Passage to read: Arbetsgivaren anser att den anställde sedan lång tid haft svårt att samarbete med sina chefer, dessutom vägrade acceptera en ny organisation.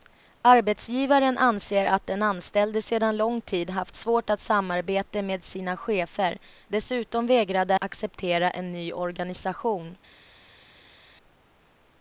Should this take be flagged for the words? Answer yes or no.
no